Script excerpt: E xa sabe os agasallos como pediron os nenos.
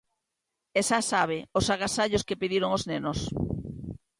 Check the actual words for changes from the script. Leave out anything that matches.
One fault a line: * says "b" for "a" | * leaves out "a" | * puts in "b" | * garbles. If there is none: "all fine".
* says "que" for "como"